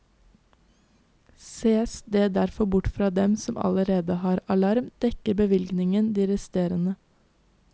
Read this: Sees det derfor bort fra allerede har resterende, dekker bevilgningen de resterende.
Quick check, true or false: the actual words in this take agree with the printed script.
false